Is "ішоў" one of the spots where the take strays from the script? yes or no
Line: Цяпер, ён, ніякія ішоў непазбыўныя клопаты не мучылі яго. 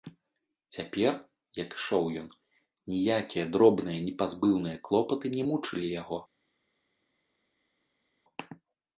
yes